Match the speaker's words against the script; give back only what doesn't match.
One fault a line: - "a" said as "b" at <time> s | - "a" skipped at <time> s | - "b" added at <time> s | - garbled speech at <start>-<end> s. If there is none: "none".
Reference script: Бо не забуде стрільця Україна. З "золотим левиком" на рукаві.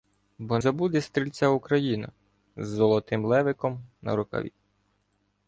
- "не" skipped at 0.6 s